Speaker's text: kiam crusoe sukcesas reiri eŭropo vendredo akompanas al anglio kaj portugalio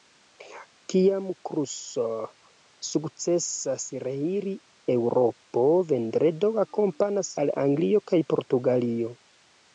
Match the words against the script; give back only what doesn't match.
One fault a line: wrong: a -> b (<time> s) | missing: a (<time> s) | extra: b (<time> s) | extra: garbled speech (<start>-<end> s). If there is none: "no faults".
no faults